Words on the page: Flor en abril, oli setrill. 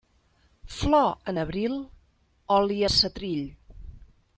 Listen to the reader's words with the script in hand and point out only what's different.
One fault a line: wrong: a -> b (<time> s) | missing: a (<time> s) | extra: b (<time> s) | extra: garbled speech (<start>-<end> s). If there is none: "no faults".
no faults